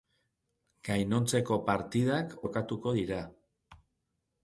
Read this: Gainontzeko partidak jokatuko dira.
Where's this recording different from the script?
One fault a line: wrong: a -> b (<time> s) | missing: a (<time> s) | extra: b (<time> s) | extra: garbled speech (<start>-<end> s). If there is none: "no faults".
no faults